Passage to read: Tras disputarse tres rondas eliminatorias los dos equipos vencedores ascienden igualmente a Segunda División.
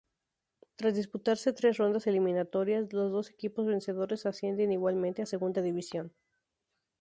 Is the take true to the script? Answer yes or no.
yes